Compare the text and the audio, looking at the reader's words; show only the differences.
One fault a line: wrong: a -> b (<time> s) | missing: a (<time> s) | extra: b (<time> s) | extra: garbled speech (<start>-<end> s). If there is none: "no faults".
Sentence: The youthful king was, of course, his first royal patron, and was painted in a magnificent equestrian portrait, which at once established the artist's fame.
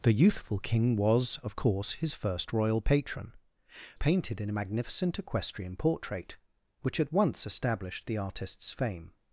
missing: and was (3.4 s)